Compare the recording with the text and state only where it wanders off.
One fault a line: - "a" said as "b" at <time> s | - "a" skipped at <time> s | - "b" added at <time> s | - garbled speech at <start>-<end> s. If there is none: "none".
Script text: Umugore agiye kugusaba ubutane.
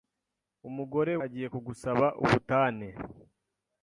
none